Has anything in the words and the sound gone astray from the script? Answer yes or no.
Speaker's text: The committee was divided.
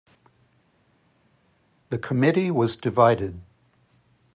no